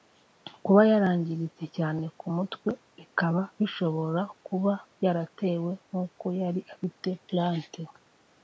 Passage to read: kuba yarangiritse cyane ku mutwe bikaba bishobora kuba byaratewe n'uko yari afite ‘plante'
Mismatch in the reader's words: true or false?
false